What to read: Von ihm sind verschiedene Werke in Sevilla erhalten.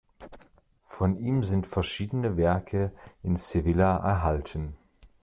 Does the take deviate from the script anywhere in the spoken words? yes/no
no